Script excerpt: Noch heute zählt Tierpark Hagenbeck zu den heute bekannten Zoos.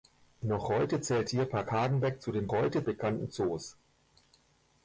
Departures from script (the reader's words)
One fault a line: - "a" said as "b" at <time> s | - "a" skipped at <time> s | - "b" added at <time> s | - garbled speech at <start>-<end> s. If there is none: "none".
none